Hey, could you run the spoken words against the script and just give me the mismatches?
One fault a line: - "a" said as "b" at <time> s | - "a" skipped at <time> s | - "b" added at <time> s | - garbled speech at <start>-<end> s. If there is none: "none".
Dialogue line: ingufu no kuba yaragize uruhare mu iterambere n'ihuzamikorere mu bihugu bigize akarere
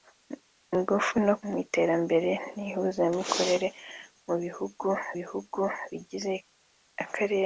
- "kuba yaragize uruhare" skipped at 1.4 s
- "bihugu" added at 5.2 s